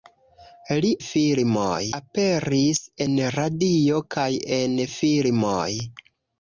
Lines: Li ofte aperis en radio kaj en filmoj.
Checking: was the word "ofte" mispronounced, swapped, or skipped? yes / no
yes